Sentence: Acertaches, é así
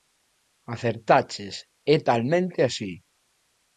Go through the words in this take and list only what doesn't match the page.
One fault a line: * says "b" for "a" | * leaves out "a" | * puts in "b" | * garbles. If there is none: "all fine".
* puts in "talmente"